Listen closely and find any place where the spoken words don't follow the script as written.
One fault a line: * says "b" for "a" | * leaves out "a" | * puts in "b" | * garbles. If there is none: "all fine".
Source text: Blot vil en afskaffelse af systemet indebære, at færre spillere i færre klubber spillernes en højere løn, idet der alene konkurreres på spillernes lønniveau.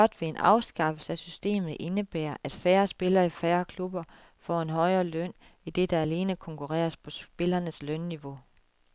* says "får" for "spillernes"